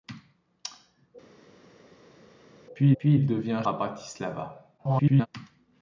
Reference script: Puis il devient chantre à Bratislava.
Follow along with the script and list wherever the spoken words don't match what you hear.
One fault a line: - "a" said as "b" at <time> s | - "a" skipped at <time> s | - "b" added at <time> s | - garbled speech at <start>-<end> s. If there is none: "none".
- "puis" added at 3.0 s
- "chantre" skipped at 3.6 s
- garbled speech at 4.8-5.3 s